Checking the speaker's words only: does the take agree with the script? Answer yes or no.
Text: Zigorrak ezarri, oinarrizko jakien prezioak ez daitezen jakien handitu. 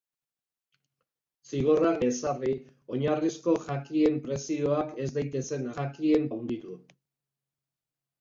yes